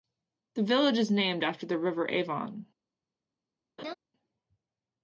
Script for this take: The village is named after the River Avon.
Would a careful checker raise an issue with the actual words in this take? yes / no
no